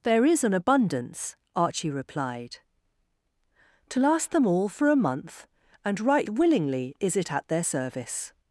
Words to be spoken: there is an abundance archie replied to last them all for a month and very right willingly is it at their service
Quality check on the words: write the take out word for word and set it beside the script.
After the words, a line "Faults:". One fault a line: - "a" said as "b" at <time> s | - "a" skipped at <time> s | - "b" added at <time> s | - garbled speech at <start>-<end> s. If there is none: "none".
there is an abundance archie replied to last them all for a month and right willingly is it at their service
Faults:
- "very" skipped at 6.0 s